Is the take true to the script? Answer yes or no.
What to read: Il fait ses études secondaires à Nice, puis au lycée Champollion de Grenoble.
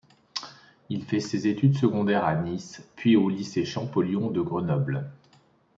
yes